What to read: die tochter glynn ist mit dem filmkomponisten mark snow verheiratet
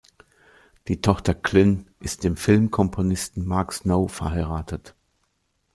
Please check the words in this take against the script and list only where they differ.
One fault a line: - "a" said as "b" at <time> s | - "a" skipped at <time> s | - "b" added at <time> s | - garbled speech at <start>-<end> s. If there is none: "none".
- "mit" skipped at 2.2 s